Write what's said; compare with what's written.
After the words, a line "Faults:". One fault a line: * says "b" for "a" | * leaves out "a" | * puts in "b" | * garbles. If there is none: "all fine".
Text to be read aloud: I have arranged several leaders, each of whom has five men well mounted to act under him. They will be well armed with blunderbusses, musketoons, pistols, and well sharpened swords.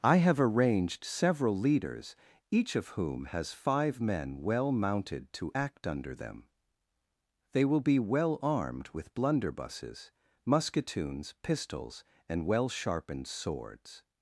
I have arranged several leaders, each of whom has five men well mounted to act under them. They will be well armed with blunderbusses, musketoons, pistols, and well sharpened swords.
Faults:
* says "them" for "him"